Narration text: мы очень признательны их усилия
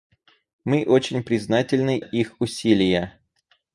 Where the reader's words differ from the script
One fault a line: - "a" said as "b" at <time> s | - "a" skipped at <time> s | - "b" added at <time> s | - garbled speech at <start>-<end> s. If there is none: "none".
none